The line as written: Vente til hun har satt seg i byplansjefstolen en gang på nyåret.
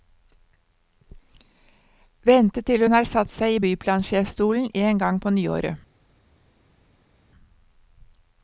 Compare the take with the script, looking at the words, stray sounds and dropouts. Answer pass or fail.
pass